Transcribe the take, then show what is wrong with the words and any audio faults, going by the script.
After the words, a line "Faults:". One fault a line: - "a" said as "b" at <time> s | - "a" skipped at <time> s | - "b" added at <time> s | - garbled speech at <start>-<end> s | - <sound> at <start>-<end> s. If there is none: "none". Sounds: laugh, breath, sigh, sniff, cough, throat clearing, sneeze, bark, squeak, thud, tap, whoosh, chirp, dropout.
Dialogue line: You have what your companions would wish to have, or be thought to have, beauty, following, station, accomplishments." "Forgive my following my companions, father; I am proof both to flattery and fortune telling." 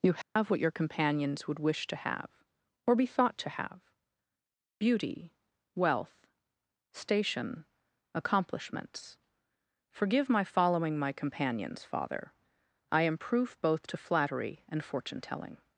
You have what your companions would wish to have, or be thought to have, beauty, wealth, station, accomplishments." "Forgive my following my companions, father; I am proof both to flattery and fortune telling."
Faults:
- dropout at 0.2-0.4 s
- "following" said as "wealth" at 5.8 s